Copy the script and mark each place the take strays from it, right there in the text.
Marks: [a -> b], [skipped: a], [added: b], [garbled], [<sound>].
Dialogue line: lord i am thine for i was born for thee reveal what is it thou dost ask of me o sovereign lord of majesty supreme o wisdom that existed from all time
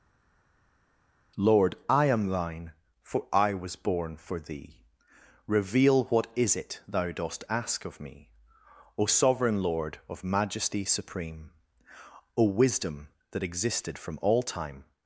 lord i am thine for i was born for thee reveal what is it thou dost ask of me o sovereign lord of majesty supreme o wisdom that existed from all time